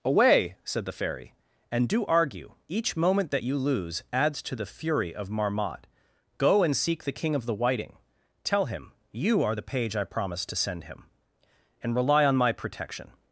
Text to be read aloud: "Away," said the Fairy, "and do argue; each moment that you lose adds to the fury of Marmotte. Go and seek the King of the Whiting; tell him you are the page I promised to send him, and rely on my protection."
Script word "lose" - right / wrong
right